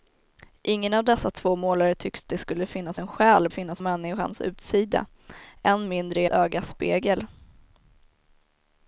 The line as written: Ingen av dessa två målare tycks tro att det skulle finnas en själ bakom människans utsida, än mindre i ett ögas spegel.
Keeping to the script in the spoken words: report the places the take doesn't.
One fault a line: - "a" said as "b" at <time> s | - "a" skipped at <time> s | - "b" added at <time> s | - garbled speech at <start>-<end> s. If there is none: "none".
- "tro att" skipped at 2.2 s
- "bakom" said as "finnas" at 3.5 s
- "ett" skipped at 6.3 s